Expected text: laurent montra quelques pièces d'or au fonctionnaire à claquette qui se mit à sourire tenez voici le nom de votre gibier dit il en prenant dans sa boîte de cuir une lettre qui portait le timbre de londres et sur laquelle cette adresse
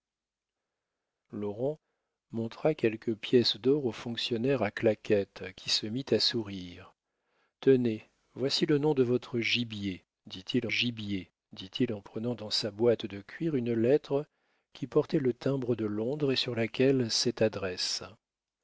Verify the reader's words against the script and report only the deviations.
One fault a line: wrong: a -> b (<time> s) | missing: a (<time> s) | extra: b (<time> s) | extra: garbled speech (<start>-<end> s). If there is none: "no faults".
extra: gibier dit il (10.7 s)